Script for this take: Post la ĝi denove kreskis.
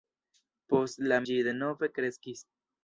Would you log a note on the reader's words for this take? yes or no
no